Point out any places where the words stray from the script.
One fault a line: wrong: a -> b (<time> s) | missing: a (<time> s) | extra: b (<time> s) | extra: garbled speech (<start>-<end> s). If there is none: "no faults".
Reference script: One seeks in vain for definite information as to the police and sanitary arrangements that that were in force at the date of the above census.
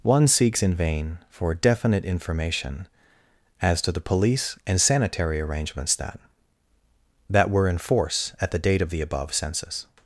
no faults